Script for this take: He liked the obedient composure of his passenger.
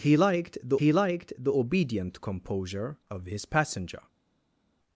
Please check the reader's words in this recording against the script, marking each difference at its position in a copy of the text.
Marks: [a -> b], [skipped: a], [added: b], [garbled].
He liked the [added: he liked the] obedient composure of his passenger.